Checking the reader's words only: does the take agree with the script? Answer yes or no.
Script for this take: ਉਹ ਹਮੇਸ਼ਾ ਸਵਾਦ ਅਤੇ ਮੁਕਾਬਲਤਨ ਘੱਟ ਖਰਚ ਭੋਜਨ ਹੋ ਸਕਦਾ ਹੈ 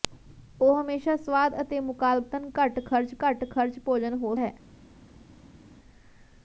no